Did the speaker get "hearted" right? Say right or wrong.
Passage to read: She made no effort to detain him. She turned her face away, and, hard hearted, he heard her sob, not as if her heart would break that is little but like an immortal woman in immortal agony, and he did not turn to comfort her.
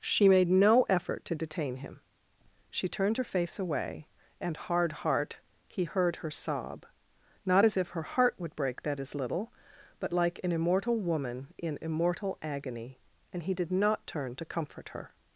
wrong